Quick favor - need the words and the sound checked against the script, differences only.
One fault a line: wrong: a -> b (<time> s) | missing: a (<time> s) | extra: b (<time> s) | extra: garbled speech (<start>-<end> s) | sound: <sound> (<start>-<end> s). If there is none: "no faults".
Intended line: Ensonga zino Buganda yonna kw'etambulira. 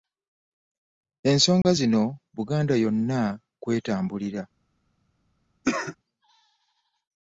sound: dropout (1.6-1.6 s)
sound: cough (5.6-6.0 s)